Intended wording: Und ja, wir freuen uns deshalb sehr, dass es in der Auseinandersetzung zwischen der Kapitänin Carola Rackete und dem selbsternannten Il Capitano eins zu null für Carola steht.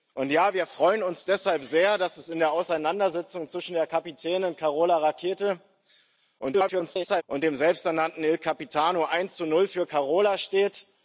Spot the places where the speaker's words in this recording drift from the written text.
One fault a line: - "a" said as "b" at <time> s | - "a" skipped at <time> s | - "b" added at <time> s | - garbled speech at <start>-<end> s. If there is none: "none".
- garbled speech at 6.4-7.2 s